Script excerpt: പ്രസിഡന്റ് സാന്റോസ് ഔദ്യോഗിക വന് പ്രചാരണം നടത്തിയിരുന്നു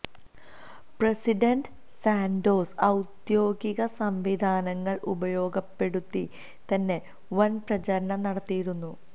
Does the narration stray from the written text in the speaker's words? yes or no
yes